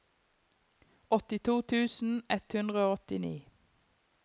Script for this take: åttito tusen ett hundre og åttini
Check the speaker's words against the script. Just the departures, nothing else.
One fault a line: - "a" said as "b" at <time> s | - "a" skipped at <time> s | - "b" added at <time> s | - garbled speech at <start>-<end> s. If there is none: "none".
none